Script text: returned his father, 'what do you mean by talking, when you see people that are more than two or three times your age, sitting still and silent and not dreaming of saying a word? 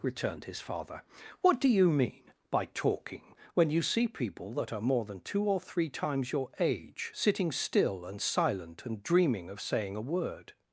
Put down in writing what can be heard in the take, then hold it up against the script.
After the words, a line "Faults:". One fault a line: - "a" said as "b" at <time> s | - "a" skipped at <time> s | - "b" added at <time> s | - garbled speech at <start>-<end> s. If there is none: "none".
returned his father, 'what do you mean by talking, when you see people that are more than two or three times your age, sitting still and silent and dreaming of saying a word?
Faults:
- "not" skipped at 9.0 s